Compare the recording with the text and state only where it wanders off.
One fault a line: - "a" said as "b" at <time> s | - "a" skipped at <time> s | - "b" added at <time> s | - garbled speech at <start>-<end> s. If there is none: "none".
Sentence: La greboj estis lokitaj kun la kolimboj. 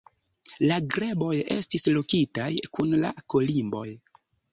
none